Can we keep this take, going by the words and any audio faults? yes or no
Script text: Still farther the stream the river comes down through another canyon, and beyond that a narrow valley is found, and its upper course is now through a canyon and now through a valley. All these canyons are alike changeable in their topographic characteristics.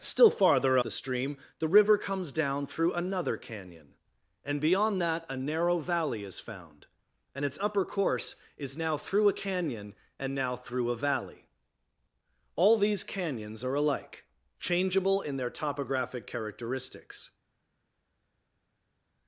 yes